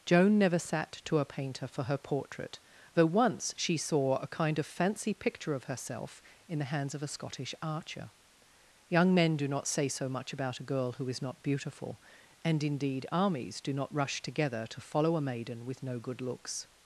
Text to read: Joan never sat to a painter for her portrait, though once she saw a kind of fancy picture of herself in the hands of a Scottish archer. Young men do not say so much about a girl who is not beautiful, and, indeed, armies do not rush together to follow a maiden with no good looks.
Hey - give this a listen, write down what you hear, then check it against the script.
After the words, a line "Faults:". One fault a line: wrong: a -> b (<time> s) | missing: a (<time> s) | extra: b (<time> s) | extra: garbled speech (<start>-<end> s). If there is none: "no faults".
Joan never sat to a painter for her portrait, though once she saw a kind of fancy picture of herself in the hands of a Scottish archer. Young men do not say so much about a girl who is not beautiful, and, indeed, armies do not rush together to follow a maiden with no good looks.
Faults:
no faults